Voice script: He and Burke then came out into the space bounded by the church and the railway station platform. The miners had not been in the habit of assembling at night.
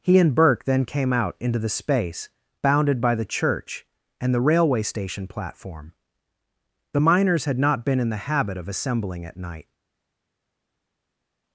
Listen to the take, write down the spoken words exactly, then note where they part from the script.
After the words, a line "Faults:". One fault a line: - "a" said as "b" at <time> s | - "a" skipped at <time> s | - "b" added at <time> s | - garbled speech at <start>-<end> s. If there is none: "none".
He and Burke then came out into the space bounded by the church and the railway station platform. The miners had not been in the habit of assembling at night.
Faults:
none